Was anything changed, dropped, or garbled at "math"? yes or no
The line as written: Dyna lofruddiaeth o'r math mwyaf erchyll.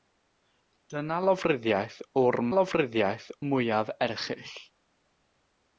yes